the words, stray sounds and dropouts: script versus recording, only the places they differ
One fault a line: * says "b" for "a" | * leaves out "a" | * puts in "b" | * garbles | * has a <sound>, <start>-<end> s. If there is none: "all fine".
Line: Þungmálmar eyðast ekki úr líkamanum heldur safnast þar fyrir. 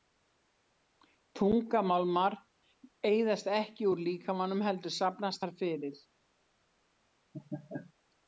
* has a laugh, 7.3-7.9 s